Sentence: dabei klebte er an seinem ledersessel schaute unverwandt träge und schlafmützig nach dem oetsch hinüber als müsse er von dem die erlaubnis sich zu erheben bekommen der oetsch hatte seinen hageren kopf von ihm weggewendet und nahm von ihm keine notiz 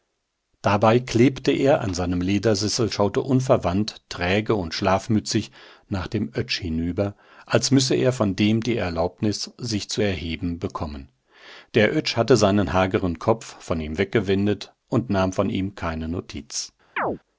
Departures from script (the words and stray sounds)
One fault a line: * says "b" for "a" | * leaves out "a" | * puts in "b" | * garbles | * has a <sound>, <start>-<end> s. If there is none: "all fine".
* has a chirp, 17.0-17.2 s